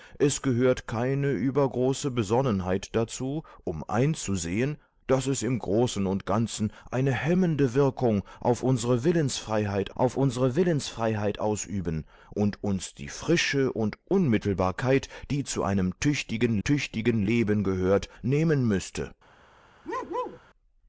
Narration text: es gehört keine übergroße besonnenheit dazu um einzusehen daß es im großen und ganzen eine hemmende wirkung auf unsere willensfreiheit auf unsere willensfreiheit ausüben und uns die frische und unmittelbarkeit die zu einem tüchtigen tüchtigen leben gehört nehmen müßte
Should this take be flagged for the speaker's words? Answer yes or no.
no